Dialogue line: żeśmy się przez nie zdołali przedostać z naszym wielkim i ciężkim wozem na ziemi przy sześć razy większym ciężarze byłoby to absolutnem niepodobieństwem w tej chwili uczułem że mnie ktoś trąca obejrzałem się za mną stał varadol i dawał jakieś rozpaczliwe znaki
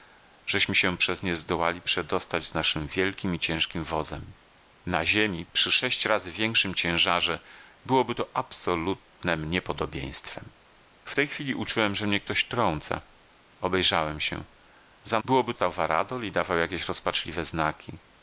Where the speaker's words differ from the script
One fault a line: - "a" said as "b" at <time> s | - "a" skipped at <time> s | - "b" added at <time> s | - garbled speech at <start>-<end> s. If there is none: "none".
- "mną" said as "byłoby" at 15.2 s